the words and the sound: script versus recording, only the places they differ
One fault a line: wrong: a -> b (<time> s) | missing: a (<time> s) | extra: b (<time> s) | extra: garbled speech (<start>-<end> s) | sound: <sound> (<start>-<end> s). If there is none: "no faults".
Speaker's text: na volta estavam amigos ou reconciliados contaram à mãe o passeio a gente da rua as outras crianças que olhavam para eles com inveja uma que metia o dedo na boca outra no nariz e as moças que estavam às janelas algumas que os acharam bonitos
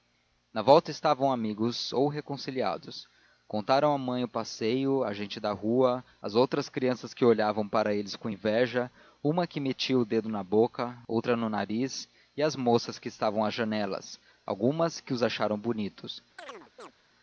sound: chirp (16.4-16.9 s)